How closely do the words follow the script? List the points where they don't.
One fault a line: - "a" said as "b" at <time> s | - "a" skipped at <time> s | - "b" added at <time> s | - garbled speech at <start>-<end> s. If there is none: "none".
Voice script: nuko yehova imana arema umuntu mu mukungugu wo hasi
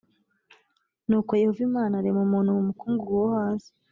none